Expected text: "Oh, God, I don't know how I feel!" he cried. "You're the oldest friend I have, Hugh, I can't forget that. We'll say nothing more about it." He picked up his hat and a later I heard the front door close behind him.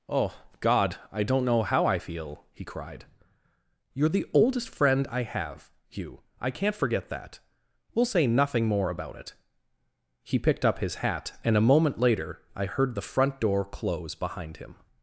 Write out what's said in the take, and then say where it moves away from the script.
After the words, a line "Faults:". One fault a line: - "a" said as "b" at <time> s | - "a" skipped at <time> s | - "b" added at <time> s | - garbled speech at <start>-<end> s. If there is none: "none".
"Oh, God, I don't know how I feel!" he cried. "You're the oldest friend I have, Hugh, I can't forget that. We'll say nothing more about it." He picked up his hat and a moment later I heard the front door close behind him.
Faults:
- "moment" added at 11.6 s